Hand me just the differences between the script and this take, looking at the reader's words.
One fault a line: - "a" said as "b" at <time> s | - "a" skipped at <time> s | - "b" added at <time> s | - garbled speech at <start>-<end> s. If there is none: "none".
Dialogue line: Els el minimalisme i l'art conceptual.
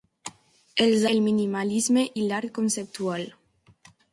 none